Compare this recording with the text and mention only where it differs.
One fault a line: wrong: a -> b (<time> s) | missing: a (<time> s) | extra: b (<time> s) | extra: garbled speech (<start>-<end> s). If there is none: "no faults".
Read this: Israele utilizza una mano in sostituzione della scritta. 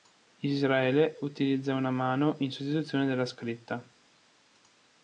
no faults